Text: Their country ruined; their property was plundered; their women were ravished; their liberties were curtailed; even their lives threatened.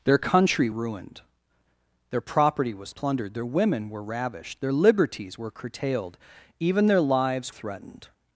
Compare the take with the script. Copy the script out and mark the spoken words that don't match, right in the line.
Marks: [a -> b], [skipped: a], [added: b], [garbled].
Their country ruined; their property was plundered; their women were ravished; their liberties were curtailed; even their lives threatened.